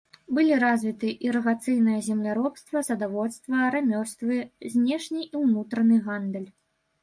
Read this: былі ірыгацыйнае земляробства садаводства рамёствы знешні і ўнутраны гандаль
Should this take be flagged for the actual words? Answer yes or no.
yes